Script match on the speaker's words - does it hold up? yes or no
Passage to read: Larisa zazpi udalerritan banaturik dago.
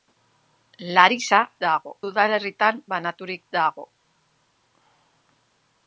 no